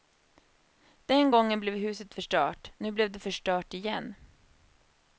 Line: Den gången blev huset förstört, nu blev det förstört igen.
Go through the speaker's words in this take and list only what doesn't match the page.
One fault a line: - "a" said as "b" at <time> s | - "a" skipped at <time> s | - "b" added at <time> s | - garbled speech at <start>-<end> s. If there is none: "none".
none